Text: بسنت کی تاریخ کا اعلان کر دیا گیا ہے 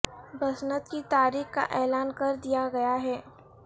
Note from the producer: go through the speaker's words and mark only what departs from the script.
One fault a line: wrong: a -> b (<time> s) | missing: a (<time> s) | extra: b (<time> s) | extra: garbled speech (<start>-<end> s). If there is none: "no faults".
no faults